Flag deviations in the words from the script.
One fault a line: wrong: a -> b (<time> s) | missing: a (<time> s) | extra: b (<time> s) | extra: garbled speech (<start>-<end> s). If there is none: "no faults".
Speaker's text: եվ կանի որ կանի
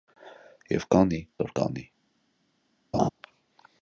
no faults